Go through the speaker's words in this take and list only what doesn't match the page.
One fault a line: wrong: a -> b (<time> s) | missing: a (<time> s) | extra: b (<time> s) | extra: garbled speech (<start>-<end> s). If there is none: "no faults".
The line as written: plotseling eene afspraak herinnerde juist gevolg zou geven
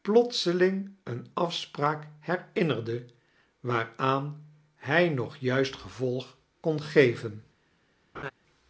extra: waaraan hij nog (3.6 s)
wrong: zou -> kon (6.6 s)